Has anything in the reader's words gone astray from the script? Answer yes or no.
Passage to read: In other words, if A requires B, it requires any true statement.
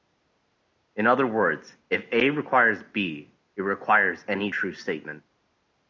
no